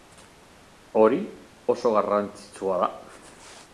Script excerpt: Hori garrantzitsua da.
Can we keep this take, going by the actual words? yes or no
no